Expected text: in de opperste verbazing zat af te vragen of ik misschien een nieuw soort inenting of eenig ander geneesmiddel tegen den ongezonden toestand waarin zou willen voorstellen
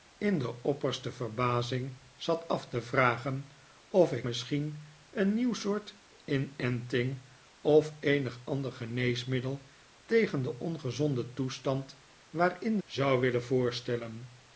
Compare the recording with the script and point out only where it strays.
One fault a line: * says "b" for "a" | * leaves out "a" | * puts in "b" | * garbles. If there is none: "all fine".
all fine